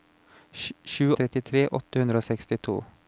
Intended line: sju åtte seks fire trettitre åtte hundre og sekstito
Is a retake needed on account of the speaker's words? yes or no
yes